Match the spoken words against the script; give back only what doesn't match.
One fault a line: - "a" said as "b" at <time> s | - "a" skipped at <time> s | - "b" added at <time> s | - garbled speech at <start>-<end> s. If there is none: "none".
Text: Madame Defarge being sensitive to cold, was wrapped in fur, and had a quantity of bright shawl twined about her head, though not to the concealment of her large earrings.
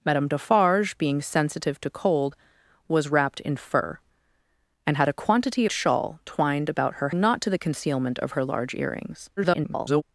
- "of bright" skipped at 5.7 s
- "head though" skipped at 7.1 s
- garbled speech at 9.4-10.0 s